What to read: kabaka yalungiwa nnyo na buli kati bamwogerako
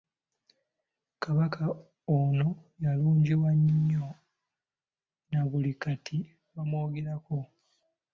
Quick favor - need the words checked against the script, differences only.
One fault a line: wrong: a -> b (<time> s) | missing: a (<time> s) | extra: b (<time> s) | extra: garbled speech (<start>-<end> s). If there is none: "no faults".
extra: ono (2.2 s)